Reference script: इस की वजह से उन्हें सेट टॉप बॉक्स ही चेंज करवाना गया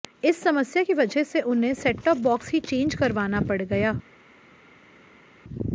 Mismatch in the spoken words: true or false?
true